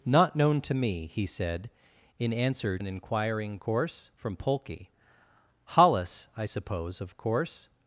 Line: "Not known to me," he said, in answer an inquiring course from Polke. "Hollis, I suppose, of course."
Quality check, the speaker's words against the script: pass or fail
pass